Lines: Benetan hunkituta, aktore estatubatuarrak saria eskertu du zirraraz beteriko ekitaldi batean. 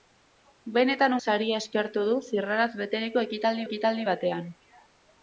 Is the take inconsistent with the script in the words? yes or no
yes